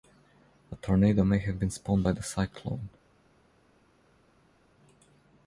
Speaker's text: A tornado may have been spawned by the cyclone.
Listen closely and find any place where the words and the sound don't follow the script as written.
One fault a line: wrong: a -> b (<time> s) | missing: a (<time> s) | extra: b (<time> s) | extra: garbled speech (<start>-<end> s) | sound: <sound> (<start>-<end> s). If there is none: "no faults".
no faults